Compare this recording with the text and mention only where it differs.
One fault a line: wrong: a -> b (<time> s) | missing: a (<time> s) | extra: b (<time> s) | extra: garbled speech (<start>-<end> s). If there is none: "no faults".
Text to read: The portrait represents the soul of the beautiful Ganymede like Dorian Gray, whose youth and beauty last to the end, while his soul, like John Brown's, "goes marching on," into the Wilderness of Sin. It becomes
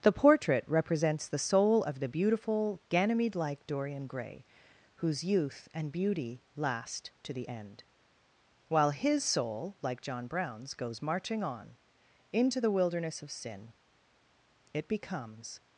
no faults